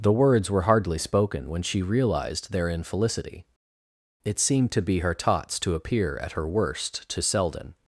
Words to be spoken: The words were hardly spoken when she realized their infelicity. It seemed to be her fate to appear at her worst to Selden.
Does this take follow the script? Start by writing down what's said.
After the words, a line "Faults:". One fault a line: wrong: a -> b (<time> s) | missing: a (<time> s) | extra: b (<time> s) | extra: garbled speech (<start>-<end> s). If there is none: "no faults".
The words were hardly spoken when she realized their infelicity. It seemed to be her tots to appear at her worst to Selden.
Faults:
wrong: fate -> tots (5.1 s)